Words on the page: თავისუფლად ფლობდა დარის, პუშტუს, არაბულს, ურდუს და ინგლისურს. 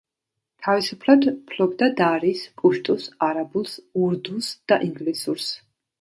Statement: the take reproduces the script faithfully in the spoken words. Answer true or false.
true